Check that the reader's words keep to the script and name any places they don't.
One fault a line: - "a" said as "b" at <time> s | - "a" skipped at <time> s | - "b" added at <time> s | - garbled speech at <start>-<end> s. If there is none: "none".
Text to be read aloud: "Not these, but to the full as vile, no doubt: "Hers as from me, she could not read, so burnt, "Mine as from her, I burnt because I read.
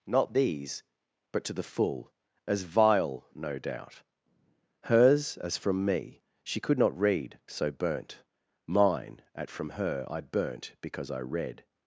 - "as" said as "at" at 9.4 s